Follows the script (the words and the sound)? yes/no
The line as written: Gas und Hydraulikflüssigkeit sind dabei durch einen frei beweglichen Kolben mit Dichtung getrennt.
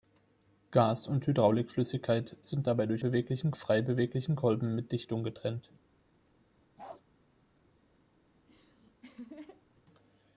no